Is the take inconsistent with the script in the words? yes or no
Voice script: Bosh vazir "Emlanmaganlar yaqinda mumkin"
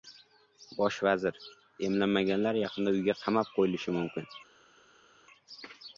yes